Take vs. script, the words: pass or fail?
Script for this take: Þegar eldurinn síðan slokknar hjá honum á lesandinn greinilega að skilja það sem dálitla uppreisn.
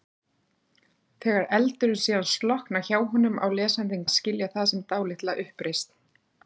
fail